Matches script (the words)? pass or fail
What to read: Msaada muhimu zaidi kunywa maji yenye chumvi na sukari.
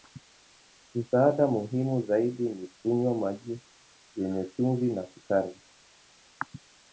fail